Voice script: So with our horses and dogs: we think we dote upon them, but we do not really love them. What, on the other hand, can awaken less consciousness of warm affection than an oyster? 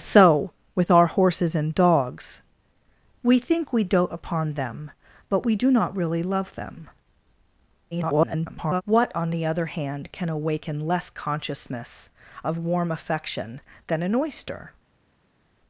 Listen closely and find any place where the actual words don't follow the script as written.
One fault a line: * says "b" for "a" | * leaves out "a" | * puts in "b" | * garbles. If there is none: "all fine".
* garbles